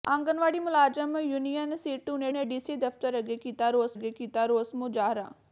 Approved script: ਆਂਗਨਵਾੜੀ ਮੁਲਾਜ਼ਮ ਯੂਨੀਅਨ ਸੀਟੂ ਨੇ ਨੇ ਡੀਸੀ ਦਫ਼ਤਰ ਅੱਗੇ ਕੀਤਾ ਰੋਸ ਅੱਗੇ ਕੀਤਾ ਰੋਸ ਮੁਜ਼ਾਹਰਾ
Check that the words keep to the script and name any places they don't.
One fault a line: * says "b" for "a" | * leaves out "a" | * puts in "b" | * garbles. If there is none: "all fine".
all fine